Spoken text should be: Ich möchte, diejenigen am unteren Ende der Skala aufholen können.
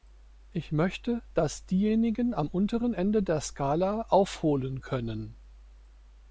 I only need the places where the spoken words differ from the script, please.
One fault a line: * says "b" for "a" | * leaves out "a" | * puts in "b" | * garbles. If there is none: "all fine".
* puts in "dass"